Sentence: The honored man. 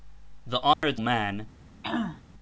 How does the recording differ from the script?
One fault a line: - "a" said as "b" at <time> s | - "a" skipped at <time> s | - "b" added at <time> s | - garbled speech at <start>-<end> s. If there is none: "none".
none